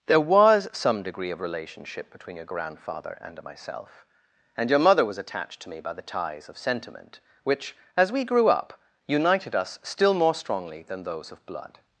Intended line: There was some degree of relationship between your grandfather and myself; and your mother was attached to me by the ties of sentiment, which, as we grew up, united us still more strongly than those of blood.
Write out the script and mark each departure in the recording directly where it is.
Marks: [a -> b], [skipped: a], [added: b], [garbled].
There was some degree of relationship between your grandfather and myself; and your mother was attached to me by the ties of sentiment, which, as we grew up, united us still more strongly than those of blood.